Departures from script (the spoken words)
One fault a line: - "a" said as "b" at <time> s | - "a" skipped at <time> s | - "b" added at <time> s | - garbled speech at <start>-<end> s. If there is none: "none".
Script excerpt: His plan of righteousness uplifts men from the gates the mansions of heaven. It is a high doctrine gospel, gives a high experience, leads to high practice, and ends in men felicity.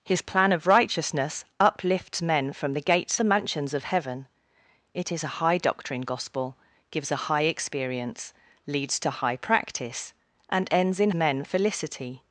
none